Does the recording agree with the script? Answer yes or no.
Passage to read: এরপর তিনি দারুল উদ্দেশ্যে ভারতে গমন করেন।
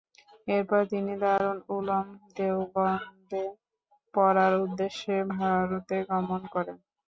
no